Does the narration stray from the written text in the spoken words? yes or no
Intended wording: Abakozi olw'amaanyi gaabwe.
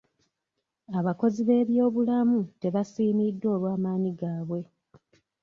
yes